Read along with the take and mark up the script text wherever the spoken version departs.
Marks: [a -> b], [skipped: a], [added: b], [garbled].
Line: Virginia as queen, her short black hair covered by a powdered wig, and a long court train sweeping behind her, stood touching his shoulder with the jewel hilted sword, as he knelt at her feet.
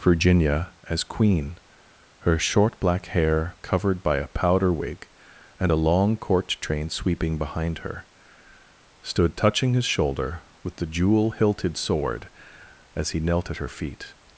Virginia as queen, her short black hair covered by a [powdered -> powder] wig, and a long court train sweeping behind her, stood touching his shoulder with the jewel hilted sword, as he knelt at her feet.